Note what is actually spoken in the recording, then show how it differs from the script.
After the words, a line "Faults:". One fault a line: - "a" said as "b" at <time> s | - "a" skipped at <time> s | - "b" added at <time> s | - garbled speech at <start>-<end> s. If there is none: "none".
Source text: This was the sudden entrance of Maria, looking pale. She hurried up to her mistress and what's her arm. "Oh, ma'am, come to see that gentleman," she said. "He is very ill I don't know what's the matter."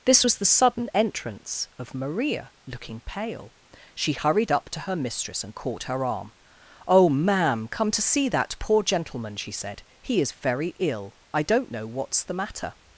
This was the sudden entrance of Maria, looking pale. She hurried up to her mistress and caught her arm. "Oh, ma'am, come to see that poor gentleman," she said. "He is very ill I don't know what's the matter."
Faults:
- "what's" said as "caught" at 5.5 s
- "poor" added at 8.6 s